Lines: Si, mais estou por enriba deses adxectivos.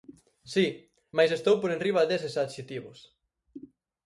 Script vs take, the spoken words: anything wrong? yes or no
no